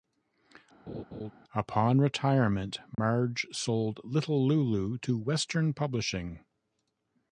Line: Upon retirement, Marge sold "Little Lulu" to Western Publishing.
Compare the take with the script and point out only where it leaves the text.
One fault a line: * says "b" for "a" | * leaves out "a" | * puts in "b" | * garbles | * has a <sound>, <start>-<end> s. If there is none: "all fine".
* has a laugh, 0.9-1.3 s
* has a dropout, 2.9-3.0 s